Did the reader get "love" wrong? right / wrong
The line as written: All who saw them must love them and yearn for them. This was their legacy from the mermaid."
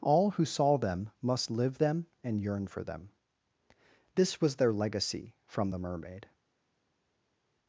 wrong